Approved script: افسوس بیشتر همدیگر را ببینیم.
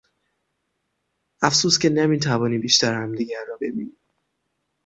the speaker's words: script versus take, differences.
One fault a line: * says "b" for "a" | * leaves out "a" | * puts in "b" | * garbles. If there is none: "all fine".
* puts in "که نمیتوانیم"